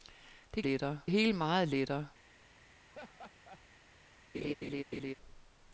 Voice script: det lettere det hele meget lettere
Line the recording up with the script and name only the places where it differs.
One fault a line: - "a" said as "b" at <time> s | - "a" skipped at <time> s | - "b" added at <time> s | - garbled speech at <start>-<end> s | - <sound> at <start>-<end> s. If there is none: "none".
- laugh at 2.9-3.6 s
- laugh at 4.3-5.1 s